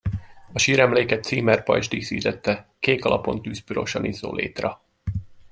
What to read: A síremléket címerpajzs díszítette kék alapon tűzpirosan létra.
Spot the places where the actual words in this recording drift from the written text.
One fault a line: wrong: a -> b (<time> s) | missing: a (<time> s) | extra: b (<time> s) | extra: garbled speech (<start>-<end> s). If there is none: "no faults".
extra: izzó (4.0 s)